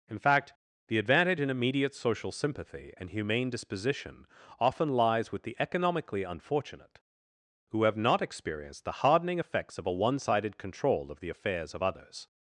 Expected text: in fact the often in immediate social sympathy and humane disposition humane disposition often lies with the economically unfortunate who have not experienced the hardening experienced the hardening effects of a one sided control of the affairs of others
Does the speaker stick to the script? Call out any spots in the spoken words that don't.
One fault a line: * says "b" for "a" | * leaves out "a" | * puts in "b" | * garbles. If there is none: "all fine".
* says "advantage" for "often"
* leaves out "humane disposition"
* leaves out "experienced the hardening"